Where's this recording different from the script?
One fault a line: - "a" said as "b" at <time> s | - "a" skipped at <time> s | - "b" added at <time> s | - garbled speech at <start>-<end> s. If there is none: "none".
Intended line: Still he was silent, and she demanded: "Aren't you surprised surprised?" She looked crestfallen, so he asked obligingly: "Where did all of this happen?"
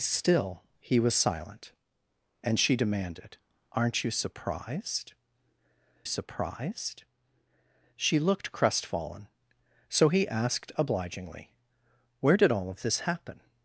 none